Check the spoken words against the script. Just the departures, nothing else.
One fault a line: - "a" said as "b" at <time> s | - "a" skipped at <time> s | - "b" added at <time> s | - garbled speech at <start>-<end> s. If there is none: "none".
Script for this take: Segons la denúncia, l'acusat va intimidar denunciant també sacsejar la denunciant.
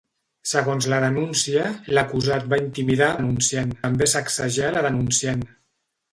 none